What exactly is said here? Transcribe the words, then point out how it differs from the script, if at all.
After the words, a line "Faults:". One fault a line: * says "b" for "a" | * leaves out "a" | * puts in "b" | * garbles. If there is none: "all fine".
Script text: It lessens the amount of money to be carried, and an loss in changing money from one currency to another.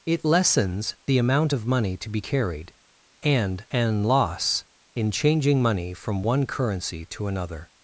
It lessens the amount of money to be carried, and an loss in changing money from one currency to another.
Faults:
all fine